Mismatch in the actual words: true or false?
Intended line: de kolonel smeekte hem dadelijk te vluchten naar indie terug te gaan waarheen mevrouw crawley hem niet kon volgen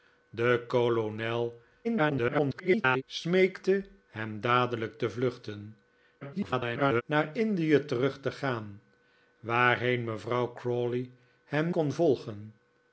true